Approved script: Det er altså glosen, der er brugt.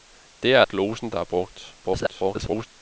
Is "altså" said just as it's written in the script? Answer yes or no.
no